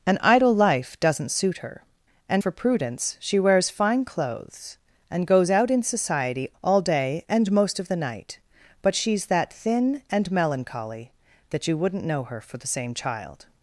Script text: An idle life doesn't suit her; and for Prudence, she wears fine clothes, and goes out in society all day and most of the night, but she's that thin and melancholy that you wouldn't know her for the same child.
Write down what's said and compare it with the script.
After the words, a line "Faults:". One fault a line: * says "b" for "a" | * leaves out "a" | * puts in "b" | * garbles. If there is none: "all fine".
An idle life doesn't suit her; and for Prudence, she wears fine clothes, and goes out in society all day and most of the night, but she's that thin and melancholy that you wouldn't know her for the same child.
Faults:
all fine